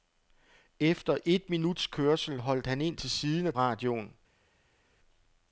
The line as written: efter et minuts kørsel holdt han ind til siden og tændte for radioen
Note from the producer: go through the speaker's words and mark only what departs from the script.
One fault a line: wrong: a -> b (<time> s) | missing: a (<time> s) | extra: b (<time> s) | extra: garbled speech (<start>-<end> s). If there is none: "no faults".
missing: tændte for (3.5 s)